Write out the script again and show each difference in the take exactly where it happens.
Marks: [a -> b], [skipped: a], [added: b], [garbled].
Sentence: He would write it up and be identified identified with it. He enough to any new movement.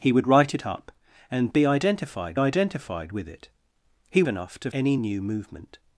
He would write it up and be identified identified with it. He enough to any new movement.